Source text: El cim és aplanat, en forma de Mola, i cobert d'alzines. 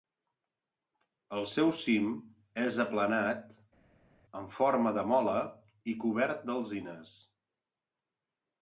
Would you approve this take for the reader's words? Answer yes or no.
no